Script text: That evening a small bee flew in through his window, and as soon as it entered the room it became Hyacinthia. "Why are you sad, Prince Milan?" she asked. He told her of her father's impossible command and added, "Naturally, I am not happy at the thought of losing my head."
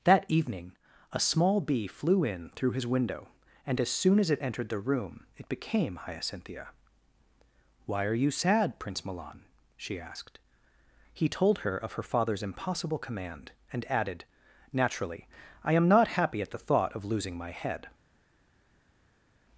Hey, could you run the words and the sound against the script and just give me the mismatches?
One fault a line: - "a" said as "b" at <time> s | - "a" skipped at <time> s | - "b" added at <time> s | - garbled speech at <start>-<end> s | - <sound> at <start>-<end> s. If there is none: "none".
none